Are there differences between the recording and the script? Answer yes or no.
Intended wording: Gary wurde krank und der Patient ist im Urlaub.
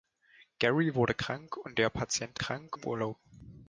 yes